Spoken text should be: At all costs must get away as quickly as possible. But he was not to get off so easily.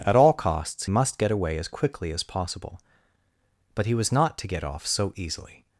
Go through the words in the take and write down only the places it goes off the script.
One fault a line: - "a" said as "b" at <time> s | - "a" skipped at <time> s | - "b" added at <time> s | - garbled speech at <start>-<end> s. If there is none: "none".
none